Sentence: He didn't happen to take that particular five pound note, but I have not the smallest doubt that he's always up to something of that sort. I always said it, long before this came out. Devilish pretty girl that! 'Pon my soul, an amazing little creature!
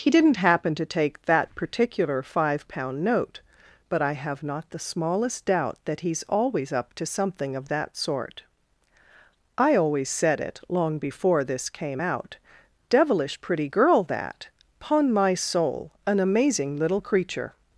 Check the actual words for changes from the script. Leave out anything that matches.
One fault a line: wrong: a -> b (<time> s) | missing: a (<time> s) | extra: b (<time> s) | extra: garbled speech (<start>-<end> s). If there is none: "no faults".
no faults